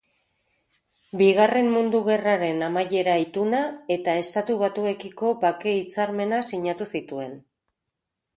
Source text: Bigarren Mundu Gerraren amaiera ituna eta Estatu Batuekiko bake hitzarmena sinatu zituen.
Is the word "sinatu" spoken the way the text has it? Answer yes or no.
yes